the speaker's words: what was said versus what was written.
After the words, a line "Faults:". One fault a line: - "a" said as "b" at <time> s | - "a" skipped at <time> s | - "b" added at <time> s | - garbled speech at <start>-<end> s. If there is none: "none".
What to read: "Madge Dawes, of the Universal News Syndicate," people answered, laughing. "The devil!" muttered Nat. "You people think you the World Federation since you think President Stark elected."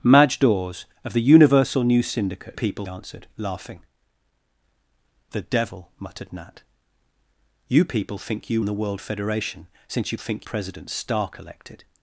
"Madge Dawes, of the Universal News Syndicate," people answered, laughing. "The devil!" muttered Nat. "You people think you the World Federation since you think President Stark elected."
Faults:
none